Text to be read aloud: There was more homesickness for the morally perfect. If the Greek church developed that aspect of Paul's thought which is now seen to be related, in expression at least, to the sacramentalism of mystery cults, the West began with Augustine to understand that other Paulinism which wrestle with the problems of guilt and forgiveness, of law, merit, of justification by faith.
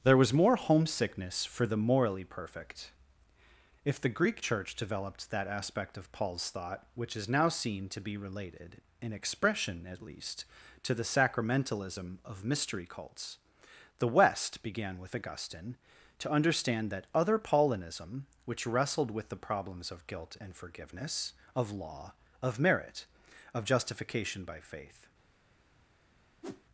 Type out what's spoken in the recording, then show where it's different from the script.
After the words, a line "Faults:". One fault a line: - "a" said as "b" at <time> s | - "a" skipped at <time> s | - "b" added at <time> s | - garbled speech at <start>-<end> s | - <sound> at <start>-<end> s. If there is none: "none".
There was more homesickness for the morally perfect. If the Greek church developed that aspect of Paul's thought which is now seen to be related, in expression at least, to the sacramentalism of mystery cults, the West began with Augustine to understand that other Paulinism which wrestled with the problems of guilt and forgiveness, of law, of merit, of justification by faith.
Faults:
- "wrestle" said as "wrestled" at 18.7 s
- "of" added at 22.4 s
- whoosh at 26.4-26.6 s